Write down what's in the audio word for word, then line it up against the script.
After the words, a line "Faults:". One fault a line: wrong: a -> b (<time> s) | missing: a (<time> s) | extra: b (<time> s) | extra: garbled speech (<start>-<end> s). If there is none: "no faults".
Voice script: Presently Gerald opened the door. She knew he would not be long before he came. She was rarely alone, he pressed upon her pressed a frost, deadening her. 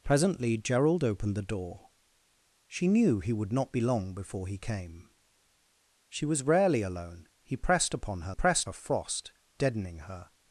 Presently Gerald opened the door. She knew he would not be long before he came. She was rarely alone, he pressed upon her pressed a frost, deadening her.
Faults:
no faults